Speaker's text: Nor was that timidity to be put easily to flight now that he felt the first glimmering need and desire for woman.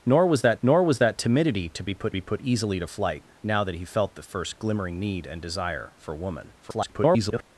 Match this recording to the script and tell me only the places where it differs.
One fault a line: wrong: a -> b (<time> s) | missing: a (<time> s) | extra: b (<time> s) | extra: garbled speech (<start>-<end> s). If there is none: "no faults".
extra: nor was that (0.6 s)
extra: be put (2.1 s)
extra: garbled speech (6.6-7.4 s)